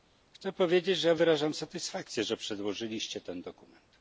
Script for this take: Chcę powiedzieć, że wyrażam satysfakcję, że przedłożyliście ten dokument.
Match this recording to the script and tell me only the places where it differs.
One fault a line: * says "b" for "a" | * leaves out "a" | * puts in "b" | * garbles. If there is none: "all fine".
all fine